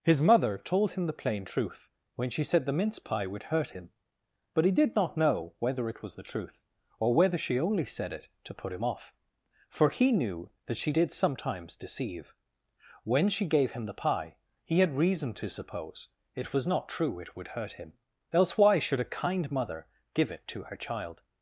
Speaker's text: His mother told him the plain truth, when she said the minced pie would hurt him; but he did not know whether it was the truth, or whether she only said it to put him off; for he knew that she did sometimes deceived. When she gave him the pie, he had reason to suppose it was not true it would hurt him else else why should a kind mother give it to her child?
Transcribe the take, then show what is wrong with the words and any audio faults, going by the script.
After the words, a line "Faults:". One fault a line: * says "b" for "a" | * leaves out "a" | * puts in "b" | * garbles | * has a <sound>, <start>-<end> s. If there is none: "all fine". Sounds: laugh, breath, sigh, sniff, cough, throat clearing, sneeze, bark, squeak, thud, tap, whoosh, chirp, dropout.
His mother told him the plain truth, when she said the mince pie would hurt him; but he did not know whether it was the truth, or whether she only said it to put him off; for he knew that she did sometimes deceive. When she gave him the pie, he had reason to suppose it was not true it would hurt him else why should a kind mother give it to her child?
Faults:
* says "mince" for "minced"
* says "deceive" for "deceived"
* leaves out "else"